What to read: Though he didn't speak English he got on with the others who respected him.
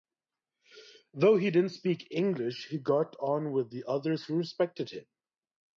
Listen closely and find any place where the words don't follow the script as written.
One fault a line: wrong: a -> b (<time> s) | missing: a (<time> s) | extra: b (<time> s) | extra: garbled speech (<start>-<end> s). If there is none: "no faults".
no faults